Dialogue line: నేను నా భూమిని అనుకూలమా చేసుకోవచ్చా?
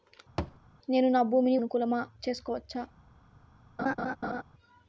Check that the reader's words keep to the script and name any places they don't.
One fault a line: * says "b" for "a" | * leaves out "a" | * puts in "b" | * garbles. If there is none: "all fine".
all fine